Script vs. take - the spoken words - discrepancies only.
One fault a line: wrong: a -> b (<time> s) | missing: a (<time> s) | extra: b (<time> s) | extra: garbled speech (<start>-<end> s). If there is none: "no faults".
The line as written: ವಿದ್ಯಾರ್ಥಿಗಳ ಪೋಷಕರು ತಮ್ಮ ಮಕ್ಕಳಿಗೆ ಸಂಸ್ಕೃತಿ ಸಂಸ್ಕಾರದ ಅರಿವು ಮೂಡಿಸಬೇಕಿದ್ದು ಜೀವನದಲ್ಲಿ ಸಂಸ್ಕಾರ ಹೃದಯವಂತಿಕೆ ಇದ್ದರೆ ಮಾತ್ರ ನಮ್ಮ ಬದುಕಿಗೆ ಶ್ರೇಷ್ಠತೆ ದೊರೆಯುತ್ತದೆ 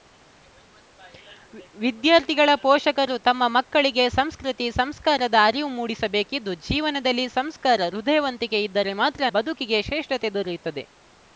missing: ನಮ್ಮ (9.3 s)